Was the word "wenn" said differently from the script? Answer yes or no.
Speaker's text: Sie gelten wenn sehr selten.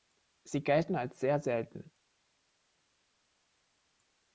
yes